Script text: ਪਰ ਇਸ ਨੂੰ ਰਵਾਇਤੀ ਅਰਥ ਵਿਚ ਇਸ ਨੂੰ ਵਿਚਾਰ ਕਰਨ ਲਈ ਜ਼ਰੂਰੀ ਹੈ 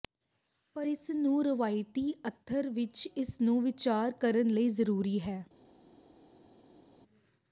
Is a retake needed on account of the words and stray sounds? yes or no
no